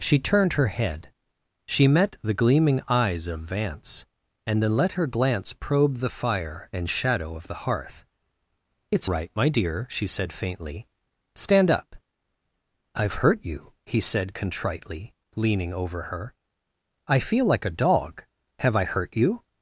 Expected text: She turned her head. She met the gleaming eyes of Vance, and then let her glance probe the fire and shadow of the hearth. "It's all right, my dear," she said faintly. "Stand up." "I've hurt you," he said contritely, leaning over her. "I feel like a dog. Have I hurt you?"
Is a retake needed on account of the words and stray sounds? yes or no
yes